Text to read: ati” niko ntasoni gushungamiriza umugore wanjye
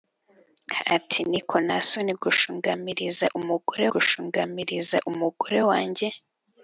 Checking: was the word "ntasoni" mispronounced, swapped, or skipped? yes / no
no